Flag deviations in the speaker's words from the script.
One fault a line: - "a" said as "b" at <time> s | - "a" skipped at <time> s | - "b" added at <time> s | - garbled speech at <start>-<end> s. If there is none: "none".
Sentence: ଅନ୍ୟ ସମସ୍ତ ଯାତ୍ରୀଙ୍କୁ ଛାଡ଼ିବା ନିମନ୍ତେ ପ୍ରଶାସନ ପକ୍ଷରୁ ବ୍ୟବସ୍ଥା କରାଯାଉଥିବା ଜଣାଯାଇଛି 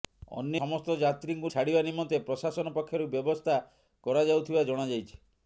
none